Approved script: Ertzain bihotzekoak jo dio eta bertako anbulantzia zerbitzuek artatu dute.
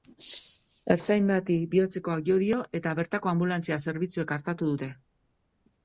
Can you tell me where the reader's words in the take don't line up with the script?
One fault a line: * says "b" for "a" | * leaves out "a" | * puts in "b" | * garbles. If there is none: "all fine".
* puts in "bati"